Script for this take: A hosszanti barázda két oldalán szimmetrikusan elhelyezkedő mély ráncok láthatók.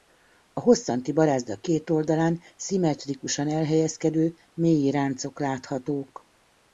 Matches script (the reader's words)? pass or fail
pass